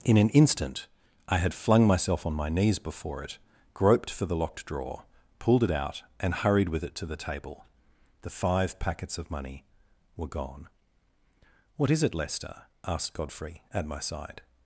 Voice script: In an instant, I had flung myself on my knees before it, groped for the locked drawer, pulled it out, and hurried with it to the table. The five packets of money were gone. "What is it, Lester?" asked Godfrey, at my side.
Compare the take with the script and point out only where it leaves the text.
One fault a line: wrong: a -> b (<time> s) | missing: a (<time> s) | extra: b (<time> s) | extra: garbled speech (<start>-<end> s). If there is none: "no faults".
no faults